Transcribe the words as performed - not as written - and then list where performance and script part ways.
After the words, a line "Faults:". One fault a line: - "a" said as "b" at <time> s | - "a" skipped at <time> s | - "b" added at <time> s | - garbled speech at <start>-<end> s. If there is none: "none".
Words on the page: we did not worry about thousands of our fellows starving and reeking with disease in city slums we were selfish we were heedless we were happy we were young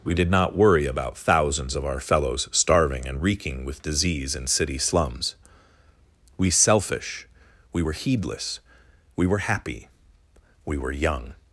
we did not worry about thousands of our fellows starving and reeking with disease in city slums we selfish we were heedless we were happy we were young
Faults:
- "were" skipped at 6.5 s